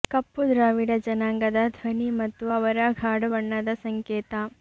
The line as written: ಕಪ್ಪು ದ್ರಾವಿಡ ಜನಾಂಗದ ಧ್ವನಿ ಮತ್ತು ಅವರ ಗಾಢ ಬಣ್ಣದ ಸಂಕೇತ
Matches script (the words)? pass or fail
pass